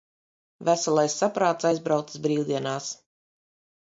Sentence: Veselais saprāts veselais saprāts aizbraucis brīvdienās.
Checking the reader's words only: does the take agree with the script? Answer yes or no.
no